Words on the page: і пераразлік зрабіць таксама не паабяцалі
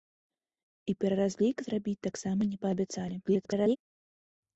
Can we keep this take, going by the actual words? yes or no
no